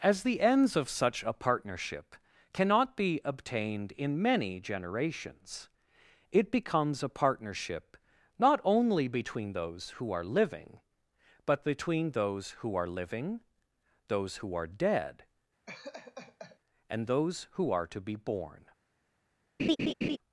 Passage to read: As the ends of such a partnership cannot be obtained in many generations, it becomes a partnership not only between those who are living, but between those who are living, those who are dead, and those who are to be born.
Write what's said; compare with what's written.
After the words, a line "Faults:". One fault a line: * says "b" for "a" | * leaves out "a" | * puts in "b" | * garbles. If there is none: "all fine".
As the ends of such a partnership cannot be obtained in many generations, it becomes a partnership not only between those who are living, but between those who are living, those who are dead, and those who are to be born.
Faults:
all fine